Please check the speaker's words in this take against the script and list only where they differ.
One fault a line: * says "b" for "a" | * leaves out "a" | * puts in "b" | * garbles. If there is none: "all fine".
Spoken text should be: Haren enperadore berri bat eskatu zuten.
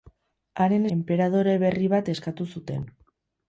all fine